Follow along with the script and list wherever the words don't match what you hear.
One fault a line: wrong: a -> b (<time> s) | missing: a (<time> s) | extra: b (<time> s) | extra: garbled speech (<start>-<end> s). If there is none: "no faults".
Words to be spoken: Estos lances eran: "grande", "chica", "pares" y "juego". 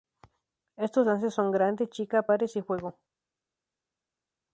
wrong: eran -> son (1.3 s)